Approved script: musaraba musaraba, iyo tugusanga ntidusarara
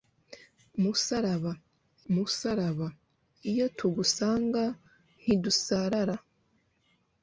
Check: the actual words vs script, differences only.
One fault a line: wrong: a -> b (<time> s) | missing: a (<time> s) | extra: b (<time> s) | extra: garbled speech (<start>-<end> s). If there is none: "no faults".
no faults